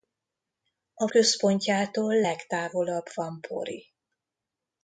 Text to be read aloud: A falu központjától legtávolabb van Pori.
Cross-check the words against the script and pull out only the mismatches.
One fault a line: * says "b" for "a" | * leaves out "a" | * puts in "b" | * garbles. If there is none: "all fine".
* leaves out "falu"